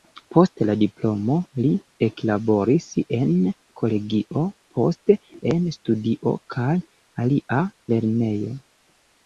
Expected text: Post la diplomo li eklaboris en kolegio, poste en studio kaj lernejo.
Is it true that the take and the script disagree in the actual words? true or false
true